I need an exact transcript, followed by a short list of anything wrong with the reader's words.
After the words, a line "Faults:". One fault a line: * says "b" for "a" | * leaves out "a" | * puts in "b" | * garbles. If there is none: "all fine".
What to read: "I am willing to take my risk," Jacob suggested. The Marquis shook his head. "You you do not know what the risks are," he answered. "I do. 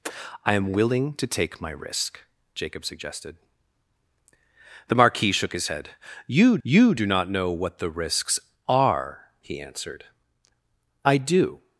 "I am willing to take my risk," Jacob suggested. The Marquis shook his head. "You you do not know what the risks are," he answered. "I do.
Faults:
all fine